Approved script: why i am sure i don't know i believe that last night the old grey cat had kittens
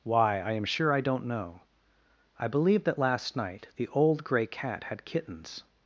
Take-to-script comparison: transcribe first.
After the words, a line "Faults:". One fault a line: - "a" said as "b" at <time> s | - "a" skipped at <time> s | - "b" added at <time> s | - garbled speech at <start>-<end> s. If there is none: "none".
why i am sure i don't know i believe that last night the old grey cat had kittens
Faults:
none